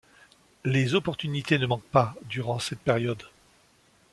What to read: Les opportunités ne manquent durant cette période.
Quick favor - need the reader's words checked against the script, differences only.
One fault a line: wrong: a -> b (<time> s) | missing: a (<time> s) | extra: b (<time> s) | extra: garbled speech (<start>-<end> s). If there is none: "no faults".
extra: pas (1.8 s)